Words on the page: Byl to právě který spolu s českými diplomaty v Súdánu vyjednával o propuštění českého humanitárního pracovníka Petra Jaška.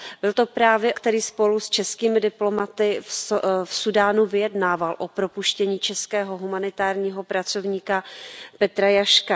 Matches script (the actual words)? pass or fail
pass